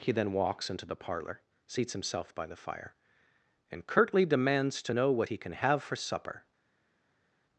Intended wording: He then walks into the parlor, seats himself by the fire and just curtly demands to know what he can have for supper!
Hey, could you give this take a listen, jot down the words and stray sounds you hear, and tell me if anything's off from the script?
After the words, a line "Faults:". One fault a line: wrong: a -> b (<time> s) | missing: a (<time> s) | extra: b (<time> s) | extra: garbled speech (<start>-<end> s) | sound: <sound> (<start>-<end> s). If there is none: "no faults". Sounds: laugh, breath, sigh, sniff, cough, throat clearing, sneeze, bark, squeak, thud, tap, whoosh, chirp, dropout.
He then walks into the parlor, seats himself by the fire and curtly demands to know what he can have for supper!
Faults:
missing: just (3.9 s)